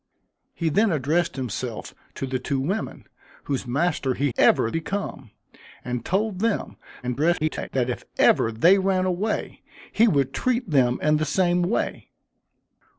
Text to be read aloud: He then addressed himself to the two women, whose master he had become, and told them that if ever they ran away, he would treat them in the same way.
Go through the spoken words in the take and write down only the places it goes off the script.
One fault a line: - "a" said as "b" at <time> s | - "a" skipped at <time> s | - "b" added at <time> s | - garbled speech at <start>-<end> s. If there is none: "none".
- "had" said as "ever" at 4.4 s
- garbled speech at 7.0-7.7 s